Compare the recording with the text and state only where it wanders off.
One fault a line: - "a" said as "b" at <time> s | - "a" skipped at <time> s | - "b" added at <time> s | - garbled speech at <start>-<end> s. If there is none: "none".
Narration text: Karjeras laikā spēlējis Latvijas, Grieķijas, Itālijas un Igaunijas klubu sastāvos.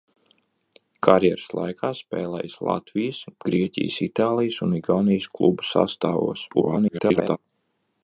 - garbled speech at 6.5-7.4 s